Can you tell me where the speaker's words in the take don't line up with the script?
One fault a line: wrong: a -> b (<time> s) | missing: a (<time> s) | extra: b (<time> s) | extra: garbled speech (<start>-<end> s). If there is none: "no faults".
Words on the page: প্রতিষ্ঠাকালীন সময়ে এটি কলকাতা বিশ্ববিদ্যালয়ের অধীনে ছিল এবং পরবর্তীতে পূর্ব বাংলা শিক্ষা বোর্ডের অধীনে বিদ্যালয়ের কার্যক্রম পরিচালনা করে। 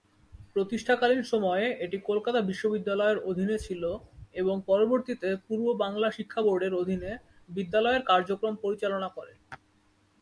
no faults